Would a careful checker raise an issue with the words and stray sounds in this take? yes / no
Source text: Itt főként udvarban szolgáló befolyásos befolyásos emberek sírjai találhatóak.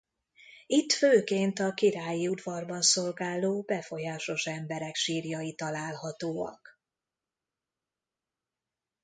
yes